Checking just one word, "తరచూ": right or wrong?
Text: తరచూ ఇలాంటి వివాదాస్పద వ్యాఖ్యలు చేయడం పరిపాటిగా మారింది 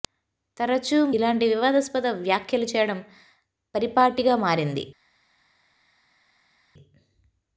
right